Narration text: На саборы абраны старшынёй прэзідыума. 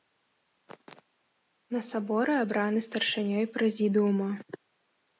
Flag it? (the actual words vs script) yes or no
no